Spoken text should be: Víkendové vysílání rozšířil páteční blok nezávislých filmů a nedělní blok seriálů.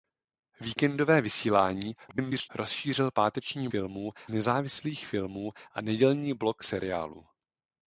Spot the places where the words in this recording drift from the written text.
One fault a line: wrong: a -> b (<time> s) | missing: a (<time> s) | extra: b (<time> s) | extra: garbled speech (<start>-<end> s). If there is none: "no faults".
extra: garbled speech (2.1-2.5 s)
wrong: blok -> filmů (3.7 s)